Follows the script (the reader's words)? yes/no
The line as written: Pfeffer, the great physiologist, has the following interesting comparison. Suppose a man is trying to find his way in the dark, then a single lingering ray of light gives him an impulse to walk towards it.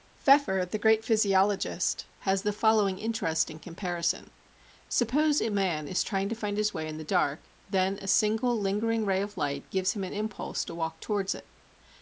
yes